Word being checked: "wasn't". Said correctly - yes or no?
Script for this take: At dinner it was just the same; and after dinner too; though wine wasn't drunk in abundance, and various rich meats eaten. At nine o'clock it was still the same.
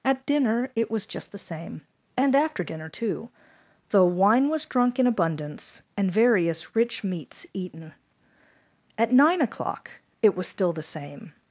no